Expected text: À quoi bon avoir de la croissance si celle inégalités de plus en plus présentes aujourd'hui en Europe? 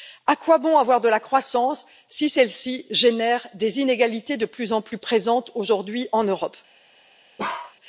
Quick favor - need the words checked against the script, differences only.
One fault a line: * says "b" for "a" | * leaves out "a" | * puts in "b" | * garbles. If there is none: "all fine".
* puts in "ci génère des"